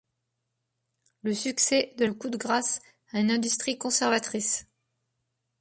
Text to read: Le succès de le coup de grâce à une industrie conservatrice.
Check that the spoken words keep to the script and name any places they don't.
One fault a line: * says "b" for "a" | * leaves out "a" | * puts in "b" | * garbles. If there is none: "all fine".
all fine